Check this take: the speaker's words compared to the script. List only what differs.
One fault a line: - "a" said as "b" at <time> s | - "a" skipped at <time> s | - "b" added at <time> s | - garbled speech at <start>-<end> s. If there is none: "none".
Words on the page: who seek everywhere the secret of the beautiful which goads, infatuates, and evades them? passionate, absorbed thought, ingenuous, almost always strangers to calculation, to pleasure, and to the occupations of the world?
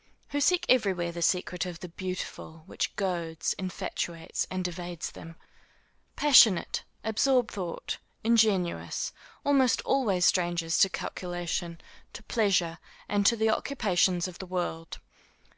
none